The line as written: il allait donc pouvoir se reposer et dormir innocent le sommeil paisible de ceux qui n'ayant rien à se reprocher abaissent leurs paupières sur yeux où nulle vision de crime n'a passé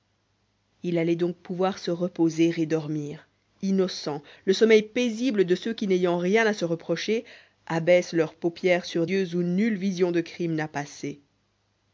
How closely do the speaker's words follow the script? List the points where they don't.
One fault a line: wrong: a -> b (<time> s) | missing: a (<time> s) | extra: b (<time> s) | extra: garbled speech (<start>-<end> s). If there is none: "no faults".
no faults